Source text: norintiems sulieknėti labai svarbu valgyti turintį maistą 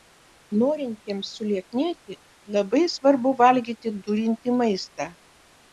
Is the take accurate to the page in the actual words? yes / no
yes